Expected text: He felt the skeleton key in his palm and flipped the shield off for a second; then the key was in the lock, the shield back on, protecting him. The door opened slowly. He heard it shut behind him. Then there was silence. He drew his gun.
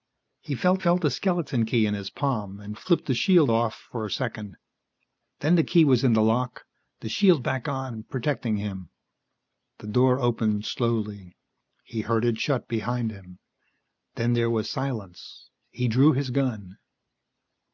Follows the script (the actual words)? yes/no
no